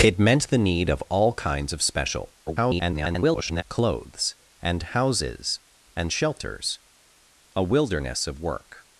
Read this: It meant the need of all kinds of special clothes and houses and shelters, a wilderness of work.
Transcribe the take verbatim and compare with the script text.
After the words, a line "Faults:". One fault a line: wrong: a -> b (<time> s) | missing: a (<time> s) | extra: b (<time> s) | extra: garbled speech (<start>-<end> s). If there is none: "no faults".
It meant the need of all kinds of special [garbled] clothes and houses and shelters, a wilderness of work.
Faults:
extra: garbled speech (2.5-3.6 s)